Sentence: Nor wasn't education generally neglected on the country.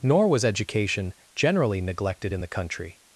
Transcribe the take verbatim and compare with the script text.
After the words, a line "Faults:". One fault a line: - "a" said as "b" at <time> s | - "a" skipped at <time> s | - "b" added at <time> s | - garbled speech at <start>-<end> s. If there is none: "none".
Nor was education generally neglected in the country.
Faults:
- "wasn't" said as "was" at 0.3 s
- "on" said as "in" at 2.3 s